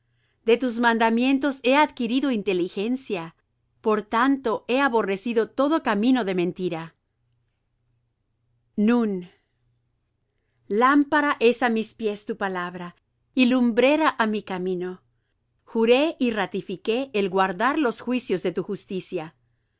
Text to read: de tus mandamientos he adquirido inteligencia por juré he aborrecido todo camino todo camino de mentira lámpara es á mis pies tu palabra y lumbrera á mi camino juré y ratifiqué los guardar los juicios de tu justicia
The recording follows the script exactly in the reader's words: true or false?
false